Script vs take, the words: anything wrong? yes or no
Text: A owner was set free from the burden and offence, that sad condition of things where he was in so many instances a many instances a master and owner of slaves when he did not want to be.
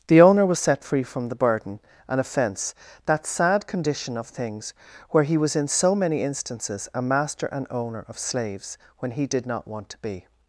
yes